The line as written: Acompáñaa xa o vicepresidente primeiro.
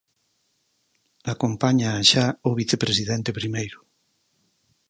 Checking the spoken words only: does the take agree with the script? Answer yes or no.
yes